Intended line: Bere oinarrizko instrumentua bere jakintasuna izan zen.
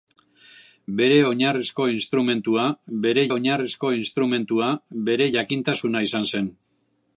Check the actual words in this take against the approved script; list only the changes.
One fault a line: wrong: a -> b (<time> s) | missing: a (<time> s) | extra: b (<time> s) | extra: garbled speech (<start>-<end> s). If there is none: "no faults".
extra: oinarrizko instrumentua bere (3.4 s)